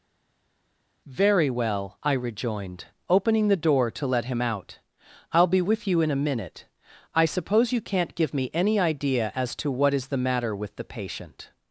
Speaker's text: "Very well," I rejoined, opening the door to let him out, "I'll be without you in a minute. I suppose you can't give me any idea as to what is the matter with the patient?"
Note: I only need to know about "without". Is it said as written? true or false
false